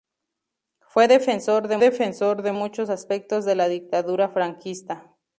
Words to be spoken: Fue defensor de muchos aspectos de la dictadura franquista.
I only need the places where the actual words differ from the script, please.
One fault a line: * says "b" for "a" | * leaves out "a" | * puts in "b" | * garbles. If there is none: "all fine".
* puts in "defensor de"